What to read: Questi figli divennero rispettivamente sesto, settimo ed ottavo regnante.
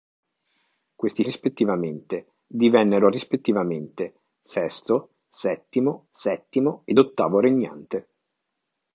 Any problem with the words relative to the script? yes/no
yes